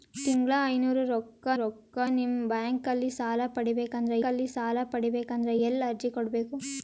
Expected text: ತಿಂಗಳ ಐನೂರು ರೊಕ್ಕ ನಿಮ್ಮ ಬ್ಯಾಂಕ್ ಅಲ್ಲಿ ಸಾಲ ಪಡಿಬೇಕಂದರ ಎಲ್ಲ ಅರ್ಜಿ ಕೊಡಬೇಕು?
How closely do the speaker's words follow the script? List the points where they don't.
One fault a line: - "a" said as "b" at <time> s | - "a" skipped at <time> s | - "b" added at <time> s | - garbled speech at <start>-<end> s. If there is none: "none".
- "ರೊಕ್ಕ" added at 1.6 s
- "ಅಲ್ಲಿ ಸಾಲ ಪಡಿಬೇಕಂದರ" added at 4.2 s